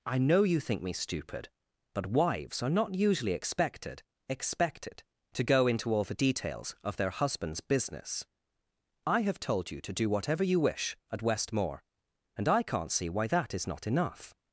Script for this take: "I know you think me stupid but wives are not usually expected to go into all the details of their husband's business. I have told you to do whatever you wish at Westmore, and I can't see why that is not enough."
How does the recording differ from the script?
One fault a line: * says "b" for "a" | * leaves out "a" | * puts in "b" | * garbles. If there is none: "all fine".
* puts in "expected"